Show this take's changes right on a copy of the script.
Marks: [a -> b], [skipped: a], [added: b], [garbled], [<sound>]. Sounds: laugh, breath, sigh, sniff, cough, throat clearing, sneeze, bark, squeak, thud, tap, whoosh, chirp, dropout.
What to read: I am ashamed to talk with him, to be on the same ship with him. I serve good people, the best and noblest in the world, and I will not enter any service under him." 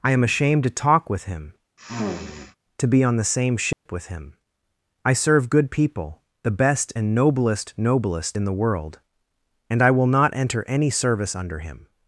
I am ashamed to talk with him, [sniff] to be on the same ship [dropout] with him. I serve good people, the best and noblest [added: noblest] in the world, and I will not enter any service under him."